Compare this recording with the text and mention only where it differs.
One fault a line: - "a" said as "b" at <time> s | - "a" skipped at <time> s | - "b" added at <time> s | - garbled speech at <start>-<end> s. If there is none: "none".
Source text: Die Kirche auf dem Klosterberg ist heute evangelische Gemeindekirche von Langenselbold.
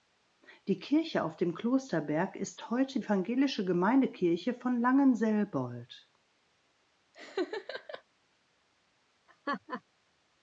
none